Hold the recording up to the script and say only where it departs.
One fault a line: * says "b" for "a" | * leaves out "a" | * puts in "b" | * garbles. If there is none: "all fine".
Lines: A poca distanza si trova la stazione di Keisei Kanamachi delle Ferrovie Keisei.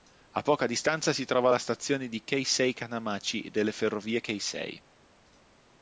all fine